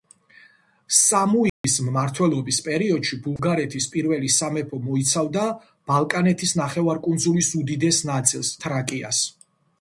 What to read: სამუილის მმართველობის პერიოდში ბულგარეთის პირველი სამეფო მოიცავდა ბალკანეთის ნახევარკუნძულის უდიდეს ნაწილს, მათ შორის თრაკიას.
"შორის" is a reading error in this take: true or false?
true